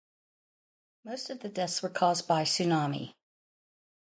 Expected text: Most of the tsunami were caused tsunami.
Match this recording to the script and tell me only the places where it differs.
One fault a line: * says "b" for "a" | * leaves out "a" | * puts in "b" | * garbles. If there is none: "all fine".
* says "deaths" for "tsunami"
* puts in "by"